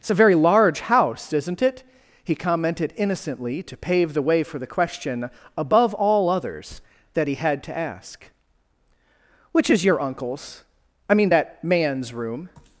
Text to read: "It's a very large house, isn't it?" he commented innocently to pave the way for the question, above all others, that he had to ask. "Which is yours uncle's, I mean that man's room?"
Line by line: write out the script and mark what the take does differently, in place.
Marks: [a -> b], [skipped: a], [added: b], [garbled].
"It's a very large house, isn't it?" he commented innocently to pave the way for the question, above all others, that he had to ask. "Which is [yours -> your] uncle's, I mean that man's room?"